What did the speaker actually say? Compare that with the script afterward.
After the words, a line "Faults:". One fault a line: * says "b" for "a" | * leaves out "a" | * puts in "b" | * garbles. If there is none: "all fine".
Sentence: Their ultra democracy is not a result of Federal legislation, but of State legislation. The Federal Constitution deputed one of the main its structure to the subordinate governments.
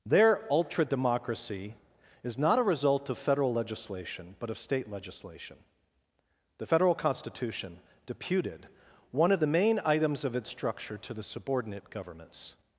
Their ultra democracy is not a result of Federal legislation, but of State legislation. The Federal Constitution deputed one of the main items of its structure to the subordinate governments.
Faults:
* puts in "items of"